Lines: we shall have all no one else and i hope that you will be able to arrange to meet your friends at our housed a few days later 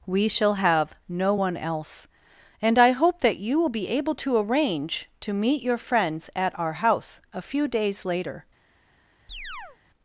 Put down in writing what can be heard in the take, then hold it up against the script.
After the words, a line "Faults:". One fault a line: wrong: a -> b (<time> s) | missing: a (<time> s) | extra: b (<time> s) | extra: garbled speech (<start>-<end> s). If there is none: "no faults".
we shall have no one else and i hope that you will be able to arrange to meet your friends at our house a few days later
Faults:
missing: all (0.9 s)
wrong: housed -> house (6.7 s)